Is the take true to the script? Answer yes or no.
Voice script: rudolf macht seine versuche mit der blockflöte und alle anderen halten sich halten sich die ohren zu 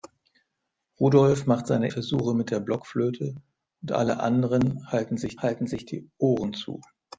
yes